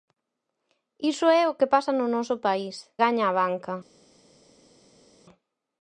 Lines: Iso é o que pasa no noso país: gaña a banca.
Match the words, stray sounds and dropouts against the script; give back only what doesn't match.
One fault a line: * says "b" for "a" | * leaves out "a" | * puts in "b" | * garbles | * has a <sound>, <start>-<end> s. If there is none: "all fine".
all fine